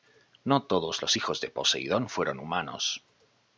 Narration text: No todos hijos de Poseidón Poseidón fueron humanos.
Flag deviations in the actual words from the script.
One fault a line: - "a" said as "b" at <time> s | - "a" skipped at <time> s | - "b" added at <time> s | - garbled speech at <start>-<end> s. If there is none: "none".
- "los" added at 1.0 s
- "Poseidón" skipped at 2.1 s